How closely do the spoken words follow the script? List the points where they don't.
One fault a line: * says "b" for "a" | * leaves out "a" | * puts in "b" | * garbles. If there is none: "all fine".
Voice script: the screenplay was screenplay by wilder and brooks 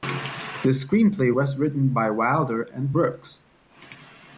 * says "written" for "screenplay"